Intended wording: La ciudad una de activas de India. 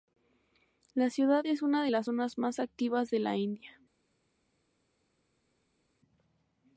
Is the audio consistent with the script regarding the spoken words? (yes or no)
no